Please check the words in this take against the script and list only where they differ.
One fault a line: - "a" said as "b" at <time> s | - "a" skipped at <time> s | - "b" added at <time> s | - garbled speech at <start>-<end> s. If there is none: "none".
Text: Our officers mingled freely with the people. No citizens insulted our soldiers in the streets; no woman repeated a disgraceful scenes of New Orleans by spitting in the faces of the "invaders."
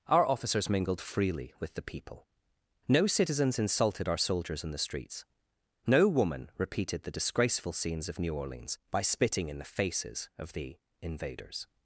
- "a" said as "the" at 7.0 s